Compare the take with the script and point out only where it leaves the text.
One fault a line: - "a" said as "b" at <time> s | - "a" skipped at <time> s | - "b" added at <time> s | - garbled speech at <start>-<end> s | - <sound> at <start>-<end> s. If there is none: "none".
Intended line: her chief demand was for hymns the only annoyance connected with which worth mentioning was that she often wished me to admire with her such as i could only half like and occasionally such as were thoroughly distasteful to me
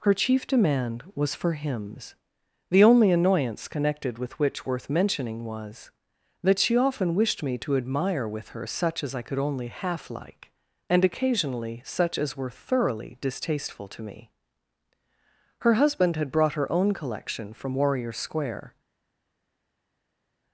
- "her husband had brought her own collection from warrior square" added at 15.6 s